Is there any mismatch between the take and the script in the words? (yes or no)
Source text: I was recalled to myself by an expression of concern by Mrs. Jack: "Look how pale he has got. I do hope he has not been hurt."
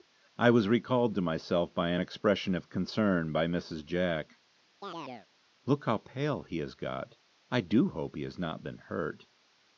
no